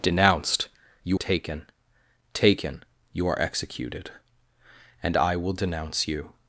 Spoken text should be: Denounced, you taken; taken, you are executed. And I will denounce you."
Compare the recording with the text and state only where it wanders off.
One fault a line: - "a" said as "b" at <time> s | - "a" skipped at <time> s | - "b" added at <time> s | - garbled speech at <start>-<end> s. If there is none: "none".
none